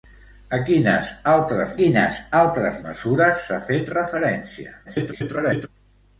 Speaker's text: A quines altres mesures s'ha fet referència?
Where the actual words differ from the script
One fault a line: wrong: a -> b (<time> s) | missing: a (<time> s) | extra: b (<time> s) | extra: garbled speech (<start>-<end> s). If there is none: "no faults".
extra: quines altres (1.8 s)
extra: garbled speech (4.8-5.7 s)